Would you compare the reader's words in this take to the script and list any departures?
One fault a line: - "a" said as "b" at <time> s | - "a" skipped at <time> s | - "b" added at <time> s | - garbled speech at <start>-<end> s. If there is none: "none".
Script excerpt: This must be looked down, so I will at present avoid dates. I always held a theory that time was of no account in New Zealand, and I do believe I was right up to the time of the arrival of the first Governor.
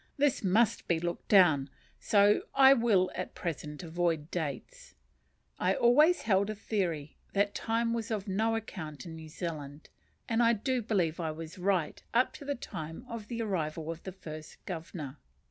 none